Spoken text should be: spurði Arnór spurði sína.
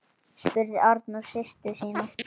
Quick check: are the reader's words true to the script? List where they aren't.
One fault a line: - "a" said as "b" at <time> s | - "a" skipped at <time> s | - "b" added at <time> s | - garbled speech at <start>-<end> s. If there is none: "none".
- "spurði" said as "systur" at 1.4 s